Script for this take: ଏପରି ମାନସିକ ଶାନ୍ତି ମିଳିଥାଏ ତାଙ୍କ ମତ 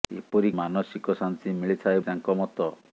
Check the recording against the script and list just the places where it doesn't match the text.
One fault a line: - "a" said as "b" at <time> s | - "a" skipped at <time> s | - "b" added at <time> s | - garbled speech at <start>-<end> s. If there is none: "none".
none